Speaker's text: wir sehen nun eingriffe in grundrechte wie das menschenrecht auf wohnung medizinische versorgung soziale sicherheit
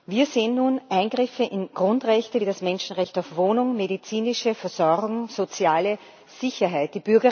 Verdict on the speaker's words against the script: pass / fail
pass